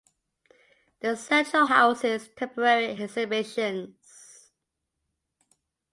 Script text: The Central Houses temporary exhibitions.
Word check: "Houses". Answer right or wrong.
right